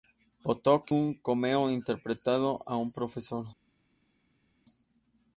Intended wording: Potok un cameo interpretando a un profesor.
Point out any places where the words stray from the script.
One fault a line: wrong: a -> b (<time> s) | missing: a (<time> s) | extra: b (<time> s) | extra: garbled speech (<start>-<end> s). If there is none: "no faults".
no faults